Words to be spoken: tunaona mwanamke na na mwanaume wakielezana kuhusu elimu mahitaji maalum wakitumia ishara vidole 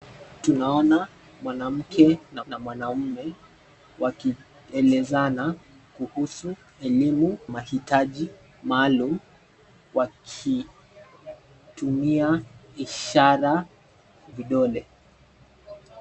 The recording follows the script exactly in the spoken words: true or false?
true